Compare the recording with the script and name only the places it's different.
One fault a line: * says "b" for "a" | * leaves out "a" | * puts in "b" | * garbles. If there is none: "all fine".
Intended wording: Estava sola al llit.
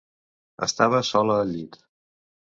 all fine